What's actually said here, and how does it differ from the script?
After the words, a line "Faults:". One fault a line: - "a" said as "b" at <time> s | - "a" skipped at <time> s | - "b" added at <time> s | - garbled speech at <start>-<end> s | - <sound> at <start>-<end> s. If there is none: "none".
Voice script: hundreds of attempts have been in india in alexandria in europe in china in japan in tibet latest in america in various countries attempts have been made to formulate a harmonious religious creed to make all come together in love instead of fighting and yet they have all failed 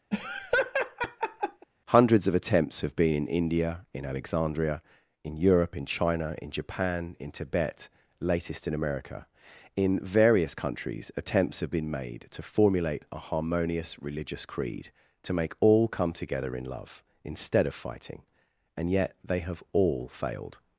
hundreds of attempts have been in india in alexandria in europe in china in japan in tibet latest in america in various countries attempts have been made to formulate a harmonious religious creed to make all come together in love instead of fighting and yet they have all failed
Faults:
- laugh at 0.1-1.7 s